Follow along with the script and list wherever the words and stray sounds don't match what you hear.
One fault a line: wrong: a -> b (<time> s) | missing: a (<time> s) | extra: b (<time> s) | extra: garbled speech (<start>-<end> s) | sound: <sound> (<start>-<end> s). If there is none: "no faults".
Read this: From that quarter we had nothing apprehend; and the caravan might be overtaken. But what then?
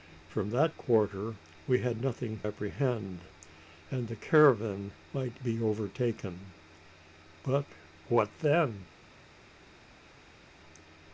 no faults